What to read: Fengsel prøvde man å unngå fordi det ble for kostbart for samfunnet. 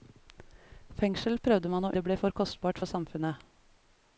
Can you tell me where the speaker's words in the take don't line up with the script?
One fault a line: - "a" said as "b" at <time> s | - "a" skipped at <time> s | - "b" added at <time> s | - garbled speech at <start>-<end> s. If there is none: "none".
- "unngå fordi" skipped at 1.9 s